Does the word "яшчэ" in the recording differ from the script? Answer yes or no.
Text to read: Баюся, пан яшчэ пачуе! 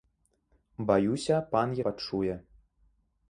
yes